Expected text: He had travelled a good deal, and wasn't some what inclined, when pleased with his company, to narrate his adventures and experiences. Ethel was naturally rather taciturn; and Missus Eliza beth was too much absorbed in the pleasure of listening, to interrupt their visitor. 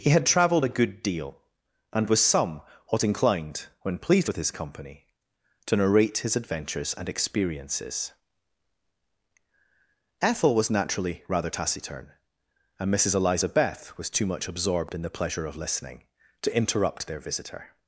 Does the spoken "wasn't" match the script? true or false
false